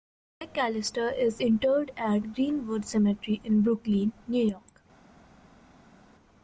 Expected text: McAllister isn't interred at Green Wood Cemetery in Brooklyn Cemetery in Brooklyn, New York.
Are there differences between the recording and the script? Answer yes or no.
yes